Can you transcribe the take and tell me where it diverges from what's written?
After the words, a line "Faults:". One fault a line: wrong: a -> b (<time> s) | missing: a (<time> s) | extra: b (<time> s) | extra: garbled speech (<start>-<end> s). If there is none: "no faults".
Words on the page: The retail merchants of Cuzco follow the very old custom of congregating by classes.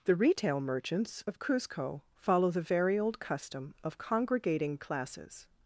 The retail merchants of Cuzco follow the very old custom of congregating classes.
Faults:
missing: by (4.8 s)